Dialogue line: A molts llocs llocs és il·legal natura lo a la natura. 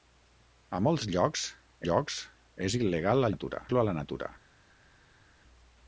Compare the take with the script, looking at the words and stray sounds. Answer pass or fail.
pass